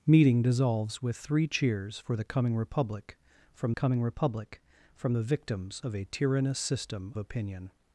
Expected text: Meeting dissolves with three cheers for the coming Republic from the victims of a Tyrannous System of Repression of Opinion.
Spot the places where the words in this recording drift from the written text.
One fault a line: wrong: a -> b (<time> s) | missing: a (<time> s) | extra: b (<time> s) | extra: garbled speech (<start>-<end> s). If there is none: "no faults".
extra: coming Republic from (3.7 s)
missing: of Repression of (7.1 s)